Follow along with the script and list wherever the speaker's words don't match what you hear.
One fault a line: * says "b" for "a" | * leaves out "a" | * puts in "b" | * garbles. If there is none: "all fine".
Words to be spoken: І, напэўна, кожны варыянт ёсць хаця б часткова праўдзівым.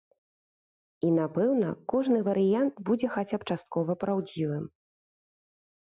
* says "будзе" for "ёсць"